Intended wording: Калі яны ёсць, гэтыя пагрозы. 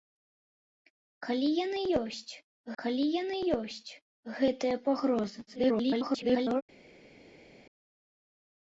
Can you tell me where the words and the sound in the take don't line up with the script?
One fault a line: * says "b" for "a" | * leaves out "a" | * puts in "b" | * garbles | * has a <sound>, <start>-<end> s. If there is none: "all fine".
* puts in "калі яны ёсць"
* garbles